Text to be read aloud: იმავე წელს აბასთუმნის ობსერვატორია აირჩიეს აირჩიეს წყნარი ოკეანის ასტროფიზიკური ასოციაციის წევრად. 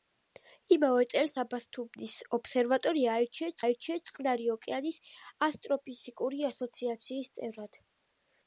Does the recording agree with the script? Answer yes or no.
yes